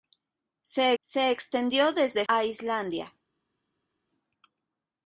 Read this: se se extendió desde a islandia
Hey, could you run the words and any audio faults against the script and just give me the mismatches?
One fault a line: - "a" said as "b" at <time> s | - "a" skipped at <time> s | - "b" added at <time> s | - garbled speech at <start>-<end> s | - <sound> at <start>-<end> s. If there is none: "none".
none